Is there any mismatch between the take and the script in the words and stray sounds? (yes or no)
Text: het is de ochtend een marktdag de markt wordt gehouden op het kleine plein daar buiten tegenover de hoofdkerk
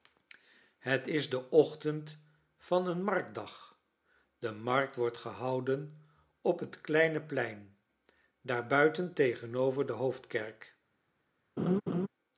yes